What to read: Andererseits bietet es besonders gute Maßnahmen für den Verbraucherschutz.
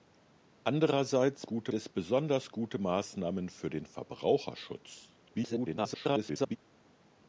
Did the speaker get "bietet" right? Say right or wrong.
wrong